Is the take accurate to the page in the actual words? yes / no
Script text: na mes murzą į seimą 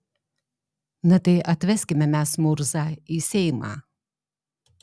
no